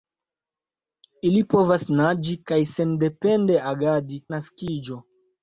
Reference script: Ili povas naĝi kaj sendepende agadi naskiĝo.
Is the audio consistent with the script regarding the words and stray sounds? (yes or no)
yes